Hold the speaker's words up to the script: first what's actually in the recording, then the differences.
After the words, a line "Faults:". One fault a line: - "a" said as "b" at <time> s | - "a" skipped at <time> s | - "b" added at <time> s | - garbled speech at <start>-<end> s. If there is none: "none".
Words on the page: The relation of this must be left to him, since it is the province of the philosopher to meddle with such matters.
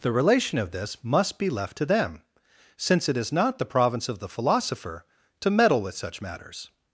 The relation of this must be left to them, since it is not the province of the philosopher to meddle with such matters.
Faults:
- "him" said as "them" at 1.9 s
- "not" added at 3.3 s